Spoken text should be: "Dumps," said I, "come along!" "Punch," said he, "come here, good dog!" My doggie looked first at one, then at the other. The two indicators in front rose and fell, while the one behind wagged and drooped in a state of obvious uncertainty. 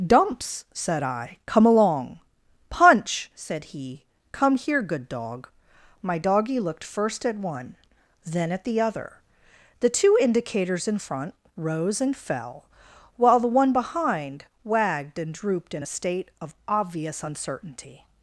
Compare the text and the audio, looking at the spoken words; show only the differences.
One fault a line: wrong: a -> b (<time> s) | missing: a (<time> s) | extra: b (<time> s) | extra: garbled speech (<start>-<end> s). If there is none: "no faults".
no faults